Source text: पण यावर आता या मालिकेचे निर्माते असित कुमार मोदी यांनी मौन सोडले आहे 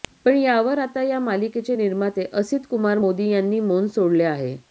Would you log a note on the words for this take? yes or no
no